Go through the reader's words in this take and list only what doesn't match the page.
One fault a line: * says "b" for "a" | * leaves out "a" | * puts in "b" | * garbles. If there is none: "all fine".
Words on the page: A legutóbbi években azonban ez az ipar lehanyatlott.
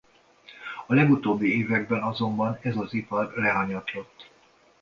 all fine